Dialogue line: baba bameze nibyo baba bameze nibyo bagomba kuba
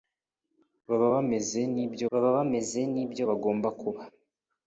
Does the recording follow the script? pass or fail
pass